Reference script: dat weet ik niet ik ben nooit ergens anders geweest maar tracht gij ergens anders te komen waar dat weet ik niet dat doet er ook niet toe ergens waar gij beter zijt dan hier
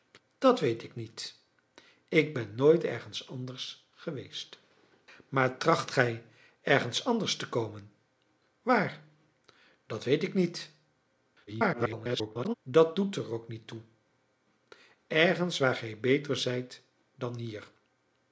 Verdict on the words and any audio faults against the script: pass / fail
fail